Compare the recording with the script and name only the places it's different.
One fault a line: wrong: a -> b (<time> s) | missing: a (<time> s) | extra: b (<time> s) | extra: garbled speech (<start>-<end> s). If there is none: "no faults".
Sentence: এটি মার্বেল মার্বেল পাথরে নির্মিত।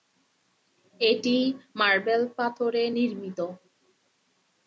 missing: মার্বেল (2.2 s)